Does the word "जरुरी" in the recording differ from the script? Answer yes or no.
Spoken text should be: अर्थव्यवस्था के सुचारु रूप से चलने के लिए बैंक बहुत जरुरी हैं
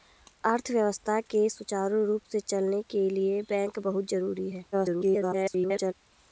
no